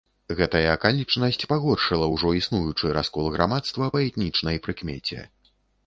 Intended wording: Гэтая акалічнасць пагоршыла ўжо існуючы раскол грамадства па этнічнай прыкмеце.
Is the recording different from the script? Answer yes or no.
no